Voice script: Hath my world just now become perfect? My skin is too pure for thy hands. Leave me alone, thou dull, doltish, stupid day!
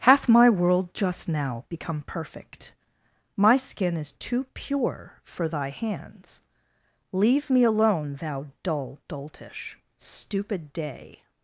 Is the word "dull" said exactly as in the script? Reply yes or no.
yes